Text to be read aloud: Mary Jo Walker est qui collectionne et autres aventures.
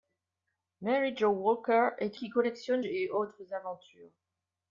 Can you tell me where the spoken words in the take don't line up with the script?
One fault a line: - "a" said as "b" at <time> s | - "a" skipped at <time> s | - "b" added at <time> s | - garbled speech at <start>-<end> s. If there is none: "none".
none